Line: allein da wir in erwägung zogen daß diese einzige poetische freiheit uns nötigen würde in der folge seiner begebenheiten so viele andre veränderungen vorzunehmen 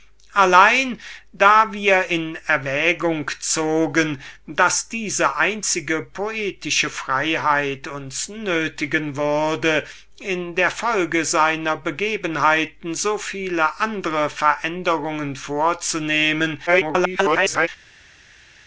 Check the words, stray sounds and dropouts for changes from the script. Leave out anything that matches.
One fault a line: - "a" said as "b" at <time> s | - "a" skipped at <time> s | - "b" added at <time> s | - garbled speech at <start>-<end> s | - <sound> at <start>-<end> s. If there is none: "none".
- garbled speech at 16.7-17.7 s